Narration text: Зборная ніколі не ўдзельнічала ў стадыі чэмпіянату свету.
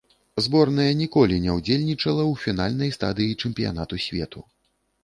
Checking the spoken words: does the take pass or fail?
fail